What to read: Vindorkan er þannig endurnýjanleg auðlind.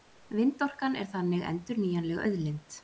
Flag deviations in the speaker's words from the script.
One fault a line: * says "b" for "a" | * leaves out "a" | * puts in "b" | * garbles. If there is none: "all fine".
all fine